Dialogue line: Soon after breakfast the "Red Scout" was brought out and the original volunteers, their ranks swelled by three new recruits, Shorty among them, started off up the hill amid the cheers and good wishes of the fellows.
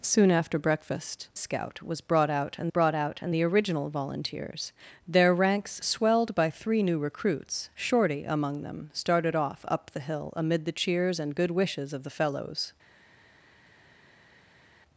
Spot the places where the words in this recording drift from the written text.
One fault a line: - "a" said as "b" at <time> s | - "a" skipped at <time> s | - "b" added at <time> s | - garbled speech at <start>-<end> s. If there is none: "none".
- "the Red Scout was" said as "Scout was brought out and" at 1.4 s